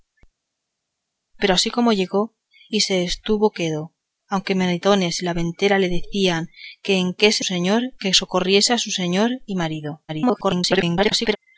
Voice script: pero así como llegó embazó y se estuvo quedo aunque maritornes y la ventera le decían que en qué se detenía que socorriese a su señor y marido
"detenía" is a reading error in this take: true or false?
true